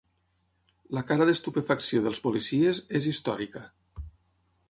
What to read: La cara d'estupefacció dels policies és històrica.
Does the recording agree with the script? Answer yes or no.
yes